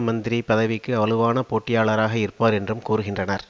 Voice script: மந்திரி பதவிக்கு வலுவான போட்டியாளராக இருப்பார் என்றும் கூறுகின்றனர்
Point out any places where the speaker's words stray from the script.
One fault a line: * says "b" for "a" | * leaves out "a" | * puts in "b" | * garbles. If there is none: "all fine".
all fine